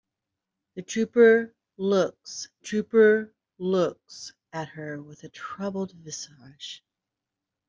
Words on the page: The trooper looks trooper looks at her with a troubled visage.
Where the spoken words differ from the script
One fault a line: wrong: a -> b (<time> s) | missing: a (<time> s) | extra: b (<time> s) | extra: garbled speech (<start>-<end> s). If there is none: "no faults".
no faults